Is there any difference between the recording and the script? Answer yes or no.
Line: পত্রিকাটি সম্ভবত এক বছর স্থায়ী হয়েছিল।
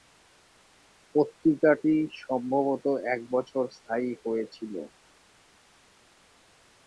no